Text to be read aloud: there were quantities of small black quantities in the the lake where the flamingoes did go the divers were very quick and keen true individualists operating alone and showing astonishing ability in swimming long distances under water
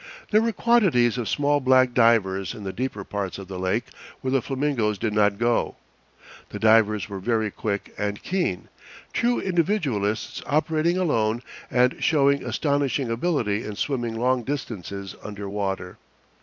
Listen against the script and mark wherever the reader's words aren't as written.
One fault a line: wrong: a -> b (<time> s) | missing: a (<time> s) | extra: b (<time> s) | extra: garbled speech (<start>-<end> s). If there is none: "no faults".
wrong: quantities -> divers (1.9 s)
extra: deeper parts of (2.7 s)
extra: not (5.1 s)